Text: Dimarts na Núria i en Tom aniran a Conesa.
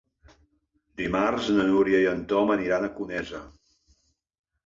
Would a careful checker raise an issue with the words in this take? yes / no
no